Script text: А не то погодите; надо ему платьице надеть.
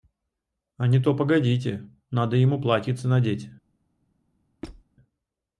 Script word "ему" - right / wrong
right